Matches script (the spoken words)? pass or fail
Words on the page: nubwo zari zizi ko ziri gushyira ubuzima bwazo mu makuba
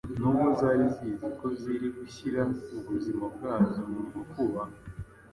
pass